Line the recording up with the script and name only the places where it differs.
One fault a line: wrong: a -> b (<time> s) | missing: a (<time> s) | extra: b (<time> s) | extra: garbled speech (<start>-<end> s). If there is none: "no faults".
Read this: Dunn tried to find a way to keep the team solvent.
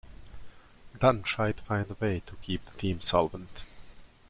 no faults